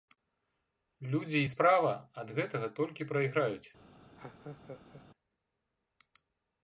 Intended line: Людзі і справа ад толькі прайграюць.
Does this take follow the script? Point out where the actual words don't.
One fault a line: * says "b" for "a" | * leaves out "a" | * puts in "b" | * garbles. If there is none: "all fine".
* puts in "гэтага"